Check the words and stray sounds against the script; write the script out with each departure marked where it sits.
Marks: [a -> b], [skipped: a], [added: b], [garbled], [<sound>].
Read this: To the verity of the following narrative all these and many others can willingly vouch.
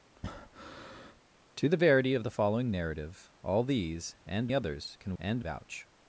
[breath] To the verity of the following narrative all these and [skipped: many] others can [willingly -> and] vouch.